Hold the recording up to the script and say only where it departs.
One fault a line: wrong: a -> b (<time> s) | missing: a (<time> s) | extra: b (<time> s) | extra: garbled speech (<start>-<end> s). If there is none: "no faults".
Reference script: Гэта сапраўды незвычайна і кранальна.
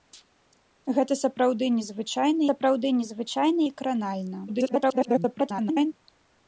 extra: сапраўды незвычайна (2.5 s)
extra: garbled speech (4.5-5.9 s)